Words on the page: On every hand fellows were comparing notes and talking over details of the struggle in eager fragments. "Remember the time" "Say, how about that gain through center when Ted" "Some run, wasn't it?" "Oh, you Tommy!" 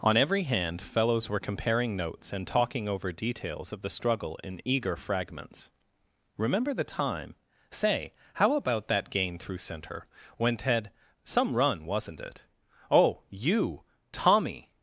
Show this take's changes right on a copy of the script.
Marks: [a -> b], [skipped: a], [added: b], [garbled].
On every hand fellows were comparing notes and talking over details of the struggle in eager fragments. "Remember the time" "Say, how about that gain through center when Ted" "Some run, wasn't it?" "Oh, you Tommy!"